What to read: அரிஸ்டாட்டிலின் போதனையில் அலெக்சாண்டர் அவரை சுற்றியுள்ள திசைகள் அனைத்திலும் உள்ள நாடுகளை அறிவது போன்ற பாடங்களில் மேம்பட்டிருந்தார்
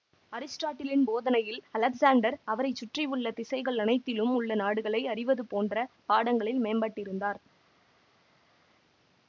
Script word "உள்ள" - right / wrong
right